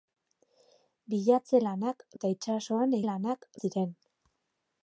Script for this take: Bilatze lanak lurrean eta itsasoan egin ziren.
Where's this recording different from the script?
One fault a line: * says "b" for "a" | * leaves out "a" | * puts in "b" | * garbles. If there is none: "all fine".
* leaves out "lurrean"
* says "lanak" for "egin"